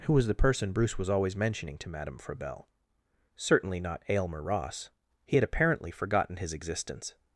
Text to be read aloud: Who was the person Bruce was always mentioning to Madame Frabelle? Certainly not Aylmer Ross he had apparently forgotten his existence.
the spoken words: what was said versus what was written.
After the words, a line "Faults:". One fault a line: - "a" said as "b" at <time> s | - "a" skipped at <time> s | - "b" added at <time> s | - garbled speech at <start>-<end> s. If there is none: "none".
Who was the person Bruce was always mentioning to Madame Frabelle? Certainly not Aylmer Ross he had apparently forgotten his existence.
Faults:
none